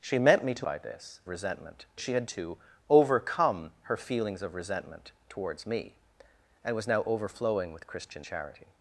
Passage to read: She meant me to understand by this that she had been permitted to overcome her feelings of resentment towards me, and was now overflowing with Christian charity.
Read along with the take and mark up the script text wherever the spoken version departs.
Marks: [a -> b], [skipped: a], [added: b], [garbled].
She meant me to [skipped: understand] by this [that -> resentment] she had [skipped: been permitted] to overcome her feelings of resentment towards me, and was now overflowing with Christian charity.